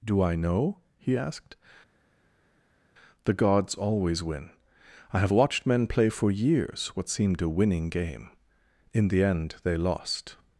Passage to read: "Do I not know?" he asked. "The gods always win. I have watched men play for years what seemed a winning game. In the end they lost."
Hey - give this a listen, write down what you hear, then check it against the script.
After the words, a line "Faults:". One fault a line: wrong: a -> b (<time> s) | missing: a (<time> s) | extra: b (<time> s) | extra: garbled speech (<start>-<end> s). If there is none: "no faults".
"Do I know?" he asked. "The gods always win. I have watched men play for years what seemed a winning game. In the end they lost."
Faults:
missing: not (0.3 s)